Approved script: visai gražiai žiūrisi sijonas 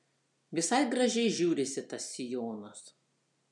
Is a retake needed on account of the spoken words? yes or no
yes